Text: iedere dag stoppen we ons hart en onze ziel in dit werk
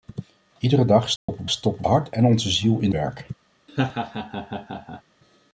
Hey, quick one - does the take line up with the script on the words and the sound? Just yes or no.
no